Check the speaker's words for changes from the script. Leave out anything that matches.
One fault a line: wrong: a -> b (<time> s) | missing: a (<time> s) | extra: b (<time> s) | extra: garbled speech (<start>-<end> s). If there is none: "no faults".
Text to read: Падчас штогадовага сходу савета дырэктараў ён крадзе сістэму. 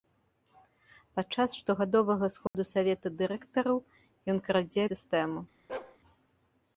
no faults